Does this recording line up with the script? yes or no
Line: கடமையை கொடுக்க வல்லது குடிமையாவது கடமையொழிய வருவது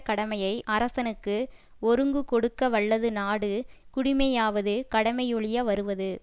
no